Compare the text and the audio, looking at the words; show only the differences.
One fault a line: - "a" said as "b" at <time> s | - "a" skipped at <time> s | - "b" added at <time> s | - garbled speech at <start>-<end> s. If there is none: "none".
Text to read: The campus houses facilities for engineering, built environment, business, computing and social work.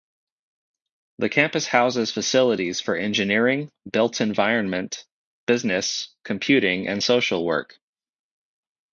none